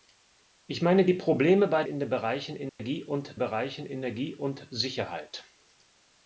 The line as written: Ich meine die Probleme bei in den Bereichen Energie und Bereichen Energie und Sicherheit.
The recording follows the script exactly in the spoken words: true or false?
true